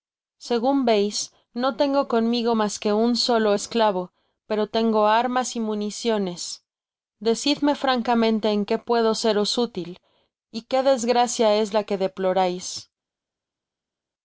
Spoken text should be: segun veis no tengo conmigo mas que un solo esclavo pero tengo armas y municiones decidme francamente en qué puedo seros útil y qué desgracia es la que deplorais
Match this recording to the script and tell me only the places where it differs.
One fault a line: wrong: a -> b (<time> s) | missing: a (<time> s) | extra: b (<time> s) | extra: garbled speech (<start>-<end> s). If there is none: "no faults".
no faults